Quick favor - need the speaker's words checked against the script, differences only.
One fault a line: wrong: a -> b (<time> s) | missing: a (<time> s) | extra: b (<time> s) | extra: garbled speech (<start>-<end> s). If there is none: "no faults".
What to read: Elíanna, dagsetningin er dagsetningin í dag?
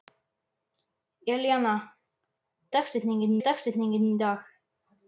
no faults